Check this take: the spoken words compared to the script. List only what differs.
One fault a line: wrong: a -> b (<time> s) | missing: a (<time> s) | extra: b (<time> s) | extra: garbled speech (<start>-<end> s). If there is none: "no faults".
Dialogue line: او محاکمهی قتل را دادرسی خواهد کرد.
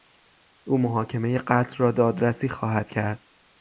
no faults